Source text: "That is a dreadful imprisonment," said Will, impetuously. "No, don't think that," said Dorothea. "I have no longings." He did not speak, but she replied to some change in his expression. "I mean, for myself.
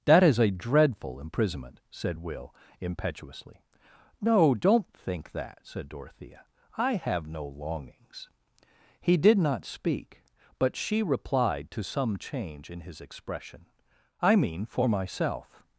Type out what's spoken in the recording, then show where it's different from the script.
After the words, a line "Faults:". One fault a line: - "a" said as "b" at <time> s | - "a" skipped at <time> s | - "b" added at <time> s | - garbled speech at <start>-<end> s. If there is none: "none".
"That is a dreadful imprisonment," said Will, impetuously. "No, don't think that," said Dorothea. "I have no longings." He did not speak, but she replied to some change in his expression. "I mean, for myself.
Faults:
none